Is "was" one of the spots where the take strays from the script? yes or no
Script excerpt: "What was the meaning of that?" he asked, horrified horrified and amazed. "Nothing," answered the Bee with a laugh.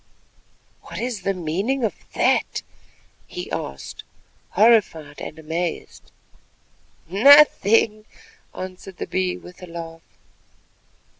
yes